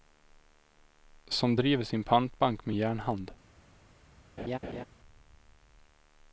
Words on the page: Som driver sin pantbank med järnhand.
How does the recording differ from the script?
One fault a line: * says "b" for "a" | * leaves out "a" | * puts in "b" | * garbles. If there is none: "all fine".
all fine